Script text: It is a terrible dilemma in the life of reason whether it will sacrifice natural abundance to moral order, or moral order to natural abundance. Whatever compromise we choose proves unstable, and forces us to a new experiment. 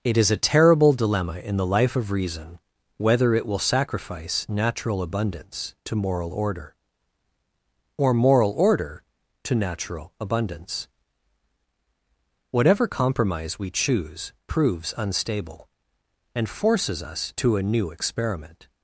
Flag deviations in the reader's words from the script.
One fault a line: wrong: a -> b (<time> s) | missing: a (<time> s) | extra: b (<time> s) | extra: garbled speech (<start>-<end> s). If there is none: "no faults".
no faults